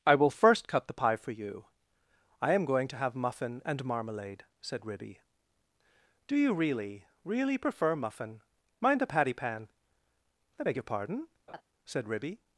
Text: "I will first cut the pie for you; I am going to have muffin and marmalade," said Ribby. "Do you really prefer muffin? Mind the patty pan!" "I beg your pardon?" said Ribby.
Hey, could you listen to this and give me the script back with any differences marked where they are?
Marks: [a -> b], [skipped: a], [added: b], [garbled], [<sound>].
"I will first cut the pie for you; I am going to have muffin and marmalade," said Ribby. "Do you really [added: really] prefer muffin? Mind the patty pan!" "I beg your pardon?" [laugh] said Ribby.